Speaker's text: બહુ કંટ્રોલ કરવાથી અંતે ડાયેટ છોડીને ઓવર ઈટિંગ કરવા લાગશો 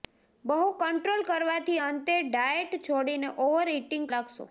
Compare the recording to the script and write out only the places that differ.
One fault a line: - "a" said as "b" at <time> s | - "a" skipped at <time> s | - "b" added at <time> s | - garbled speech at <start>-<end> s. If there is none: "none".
- "કરવા" skipped at 4.1 s